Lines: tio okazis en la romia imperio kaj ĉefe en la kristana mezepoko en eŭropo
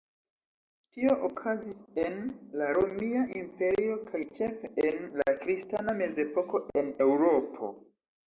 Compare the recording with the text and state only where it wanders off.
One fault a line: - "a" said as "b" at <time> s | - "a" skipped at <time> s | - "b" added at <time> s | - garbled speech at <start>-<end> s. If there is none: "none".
none